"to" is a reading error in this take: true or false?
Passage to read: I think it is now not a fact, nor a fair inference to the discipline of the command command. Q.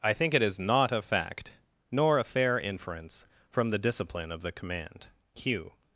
true